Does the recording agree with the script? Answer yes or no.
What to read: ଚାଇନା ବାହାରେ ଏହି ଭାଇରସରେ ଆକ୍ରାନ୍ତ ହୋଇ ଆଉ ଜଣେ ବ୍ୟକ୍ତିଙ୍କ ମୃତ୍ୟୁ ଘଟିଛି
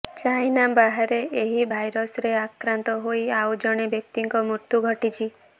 yes